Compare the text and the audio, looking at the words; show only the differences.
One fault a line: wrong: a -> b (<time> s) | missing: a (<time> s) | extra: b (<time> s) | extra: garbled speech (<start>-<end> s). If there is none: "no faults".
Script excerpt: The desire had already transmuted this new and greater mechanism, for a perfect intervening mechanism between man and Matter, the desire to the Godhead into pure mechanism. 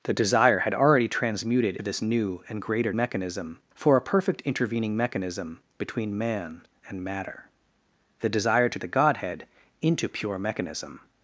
no faults